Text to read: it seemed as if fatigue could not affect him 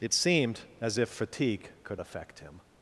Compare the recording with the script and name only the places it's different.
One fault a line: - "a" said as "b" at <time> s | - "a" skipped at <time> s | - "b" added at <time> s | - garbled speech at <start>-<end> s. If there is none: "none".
- "not" skipped at 2.0 s